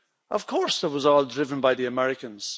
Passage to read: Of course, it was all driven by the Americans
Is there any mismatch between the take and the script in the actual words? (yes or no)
no